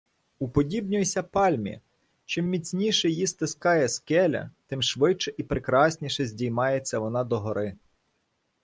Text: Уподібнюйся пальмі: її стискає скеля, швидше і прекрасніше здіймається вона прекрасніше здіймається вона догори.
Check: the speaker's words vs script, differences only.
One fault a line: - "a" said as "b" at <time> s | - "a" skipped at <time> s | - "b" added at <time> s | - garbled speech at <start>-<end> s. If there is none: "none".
- "чим міцніше" added at 2.2 s
- "тим" added at 4.7 s
- "прекрасніше здіймається вона" skipped at 7.2 s